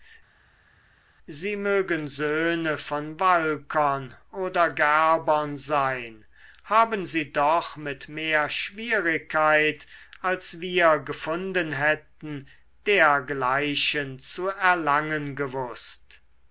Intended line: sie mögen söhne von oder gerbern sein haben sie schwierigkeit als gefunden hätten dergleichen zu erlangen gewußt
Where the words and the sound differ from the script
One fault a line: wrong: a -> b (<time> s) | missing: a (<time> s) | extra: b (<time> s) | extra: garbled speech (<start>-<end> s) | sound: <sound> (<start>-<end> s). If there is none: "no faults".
extra: walkern (3.2 s)
extra: doch mit mehr (7.3 s)
extra: wir (10.6 s)